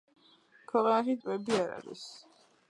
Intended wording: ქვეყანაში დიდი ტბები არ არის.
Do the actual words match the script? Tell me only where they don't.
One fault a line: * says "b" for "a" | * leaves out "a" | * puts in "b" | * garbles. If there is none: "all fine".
* leaves out "დიდი"